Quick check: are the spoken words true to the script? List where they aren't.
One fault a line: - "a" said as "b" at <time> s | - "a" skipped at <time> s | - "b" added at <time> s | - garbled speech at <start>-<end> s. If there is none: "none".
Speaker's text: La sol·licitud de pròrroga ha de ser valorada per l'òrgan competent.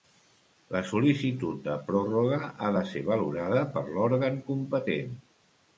none